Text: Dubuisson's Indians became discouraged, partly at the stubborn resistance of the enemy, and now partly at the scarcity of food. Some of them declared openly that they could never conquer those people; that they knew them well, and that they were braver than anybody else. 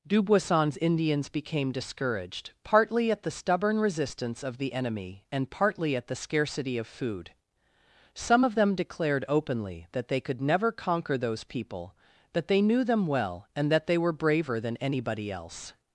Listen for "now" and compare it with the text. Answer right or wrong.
wrong